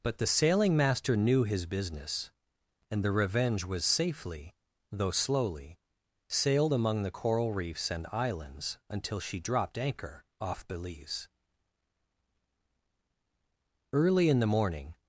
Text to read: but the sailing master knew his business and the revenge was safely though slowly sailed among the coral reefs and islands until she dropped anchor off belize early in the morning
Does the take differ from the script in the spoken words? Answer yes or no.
no